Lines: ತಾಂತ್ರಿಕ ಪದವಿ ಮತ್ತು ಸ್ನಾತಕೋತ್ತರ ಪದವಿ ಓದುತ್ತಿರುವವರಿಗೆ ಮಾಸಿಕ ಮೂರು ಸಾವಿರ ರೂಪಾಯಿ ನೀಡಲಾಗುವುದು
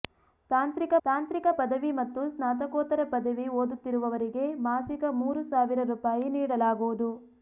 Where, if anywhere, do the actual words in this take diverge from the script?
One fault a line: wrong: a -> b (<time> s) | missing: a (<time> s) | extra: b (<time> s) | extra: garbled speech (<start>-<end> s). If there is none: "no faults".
extra: ತಾಂತ್ರಿಕ (1.1 s)